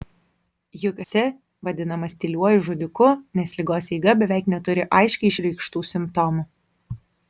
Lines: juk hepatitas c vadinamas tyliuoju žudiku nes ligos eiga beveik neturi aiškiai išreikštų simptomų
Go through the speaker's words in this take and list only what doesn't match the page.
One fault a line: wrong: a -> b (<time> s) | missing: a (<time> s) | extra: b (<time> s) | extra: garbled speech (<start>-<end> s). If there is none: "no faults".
missing: hepatitas (1.0 s)